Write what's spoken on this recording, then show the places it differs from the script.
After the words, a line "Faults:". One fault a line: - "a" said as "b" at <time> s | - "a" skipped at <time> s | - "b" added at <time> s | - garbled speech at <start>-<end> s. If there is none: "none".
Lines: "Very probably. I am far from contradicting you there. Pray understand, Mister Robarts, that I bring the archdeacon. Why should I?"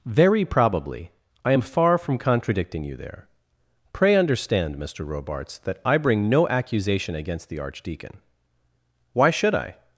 "Very probably. I am far from contradicting you there. Pray understand, Mister Robarts, that I bring no accusation against the archdeacon. Why should I?"
Faults:
- "no accusation against" added at 6.3 s